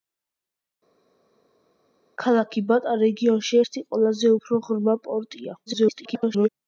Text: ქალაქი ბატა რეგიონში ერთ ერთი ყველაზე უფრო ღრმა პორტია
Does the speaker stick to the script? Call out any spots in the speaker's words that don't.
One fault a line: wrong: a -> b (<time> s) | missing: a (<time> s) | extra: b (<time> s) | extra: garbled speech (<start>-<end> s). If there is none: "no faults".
missing: ერთ (3.6 s)
extra: garbled speech (5.7-6.5 s)